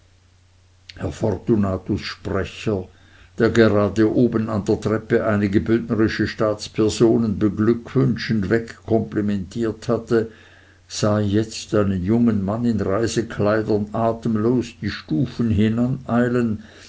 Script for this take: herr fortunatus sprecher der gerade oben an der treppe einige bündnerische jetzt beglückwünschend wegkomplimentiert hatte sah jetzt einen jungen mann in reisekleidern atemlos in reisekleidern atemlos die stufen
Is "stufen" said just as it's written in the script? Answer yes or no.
yes